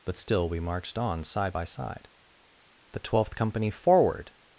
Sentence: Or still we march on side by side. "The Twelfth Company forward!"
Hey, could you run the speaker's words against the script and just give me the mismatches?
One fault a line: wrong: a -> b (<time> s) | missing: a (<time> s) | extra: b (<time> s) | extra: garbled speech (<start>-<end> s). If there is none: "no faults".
wrong: Or -> But (0.1 s)
wrong: march -> marched (0.6 s)